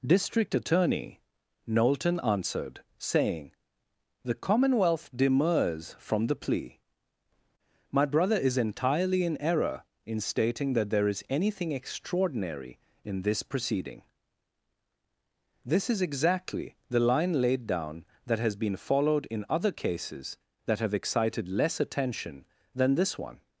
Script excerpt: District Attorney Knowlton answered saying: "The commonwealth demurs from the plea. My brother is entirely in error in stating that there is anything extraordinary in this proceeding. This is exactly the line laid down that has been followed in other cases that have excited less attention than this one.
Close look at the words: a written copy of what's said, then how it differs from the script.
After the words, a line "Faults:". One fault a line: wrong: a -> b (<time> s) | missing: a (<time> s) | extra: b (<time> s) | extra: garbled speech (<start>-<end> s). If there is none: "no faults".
District Attorney Knowlton answered saying: "The commonwealth demurs from the plea. My brother is entirely in error in stating that there is anything extraordinary in this proceeding. This is exactly the line laid down that has been followed in other cases that have excited less attention than this one.
Faults:
no faults